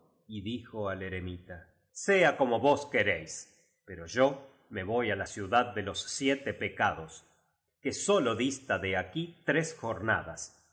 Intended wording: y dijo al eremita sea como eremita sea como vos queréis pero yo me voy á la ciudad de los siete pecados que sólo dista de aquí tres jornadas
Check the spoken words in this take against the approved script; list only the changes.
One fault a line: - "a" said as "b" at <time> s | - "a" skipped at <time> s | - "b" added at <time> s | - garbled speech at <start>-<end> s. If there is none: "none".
- "eremita sea como" skipped at 2.6 s